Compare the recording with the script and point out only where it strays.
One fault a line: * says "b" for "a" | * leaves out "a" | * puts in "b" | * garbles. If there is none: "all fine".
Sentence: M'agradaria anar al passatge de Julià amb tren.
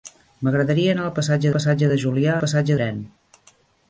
* puts in "passatge"
* says "passatge" for "amb"